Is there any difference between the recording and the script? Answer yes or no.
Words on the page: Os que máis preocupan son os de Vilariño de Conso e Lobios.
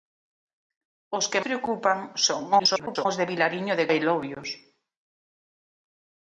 yes